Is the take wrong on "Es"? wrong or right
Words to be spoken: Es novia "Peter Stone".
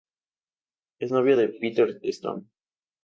right